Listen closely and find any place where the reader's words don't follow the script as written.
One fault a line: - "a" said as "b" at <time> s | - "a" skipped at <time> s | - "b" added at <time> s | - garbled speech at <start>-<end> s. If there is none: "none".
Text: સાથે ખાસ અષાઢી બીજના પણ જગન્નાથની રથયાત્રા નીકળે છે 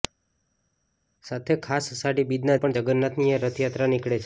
none